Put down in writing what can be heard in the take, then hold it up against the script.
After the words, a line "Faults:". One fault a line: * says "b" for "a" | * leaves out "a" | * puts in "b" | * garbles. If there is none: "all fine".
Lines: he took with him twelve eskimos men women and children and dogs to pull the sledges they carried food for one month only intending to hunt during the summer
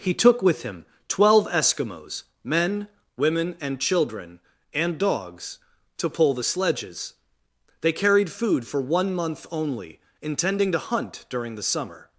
he took with him twelve eskimos men women and children and dogs to pull the sledges they carried food for one month only intending to hunt during the summer
Faults:
all fine